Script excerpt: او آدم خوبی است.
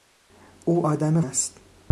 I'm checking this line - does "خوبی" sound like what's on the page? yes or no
no